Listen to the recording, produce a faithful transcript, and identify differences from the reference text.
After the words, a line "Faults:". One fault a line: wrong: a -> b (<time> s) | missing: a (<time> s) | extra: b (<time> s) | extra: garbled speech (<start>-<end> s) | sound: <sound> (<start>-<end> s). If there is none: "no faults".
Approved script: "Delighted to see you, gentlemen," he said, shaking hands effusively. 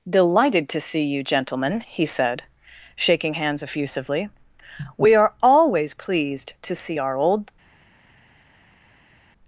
"Delighted to see you, gentlemen," he said, shaking hands effusively. "We are always pleased to see our old
Faults:
extra: We are always pleased to see our old (5.0 s)